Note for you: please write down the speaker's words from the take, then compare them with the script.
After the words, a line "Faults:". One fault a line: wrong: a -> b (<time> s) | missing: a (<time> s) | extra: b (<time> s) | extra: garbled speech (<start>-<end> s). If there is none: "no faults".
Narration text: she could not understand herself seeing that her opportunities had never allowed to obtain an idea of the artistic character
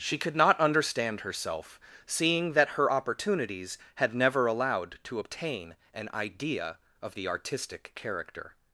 she could not understand herself seeing that her opportunities had never allowed to obtain an idea of the artistic character
Faults:
no faults